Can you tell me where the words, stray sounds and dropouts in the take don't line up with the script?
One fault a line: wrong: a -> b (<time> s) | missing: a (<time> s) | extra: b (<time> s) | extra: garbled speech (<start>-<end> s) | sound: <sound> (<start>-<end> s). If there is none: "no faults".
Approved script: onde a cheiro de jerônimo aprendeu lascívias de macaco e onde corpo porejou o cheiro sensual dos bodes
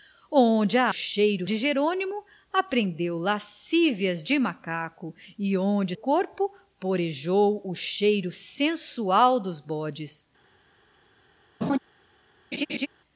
sound: laugh (11.6-11.8 s)
sound: laugh (12.5-12.9 s)